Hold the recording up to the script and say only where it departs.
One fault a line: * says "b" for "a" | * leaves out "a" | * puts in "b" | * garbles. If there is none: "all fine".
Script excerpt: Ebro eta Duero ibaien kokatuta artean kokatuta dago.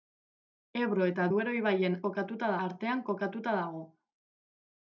all fine